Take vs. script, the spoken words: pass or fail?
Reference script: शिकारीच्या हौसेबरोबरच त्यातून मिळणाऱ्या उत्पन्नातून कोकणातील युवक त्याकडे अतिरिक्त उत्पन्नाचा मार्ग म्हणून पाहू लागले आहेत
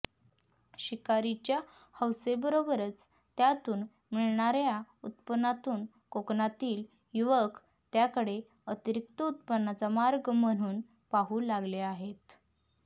pass